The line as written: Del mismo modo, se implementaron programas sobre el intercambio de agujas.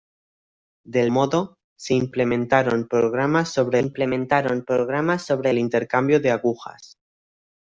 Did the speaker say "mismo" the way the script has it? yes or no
no